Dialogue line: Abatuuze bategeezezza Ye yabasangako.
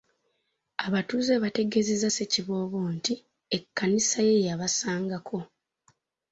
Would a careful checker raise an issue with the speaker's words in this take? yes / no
yes